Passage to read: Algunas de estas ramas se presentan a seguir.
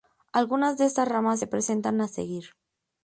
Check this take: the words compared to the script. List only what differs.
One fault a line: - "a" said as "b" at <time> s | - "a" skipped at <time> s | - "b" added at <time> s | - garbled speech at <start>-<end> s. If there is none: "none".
none